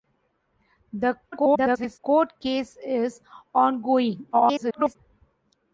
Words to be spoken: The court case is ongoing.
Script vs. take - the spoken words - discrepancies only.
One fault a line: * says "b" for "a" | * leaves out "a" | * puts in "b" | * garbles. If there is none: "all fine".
* garbles
* garbles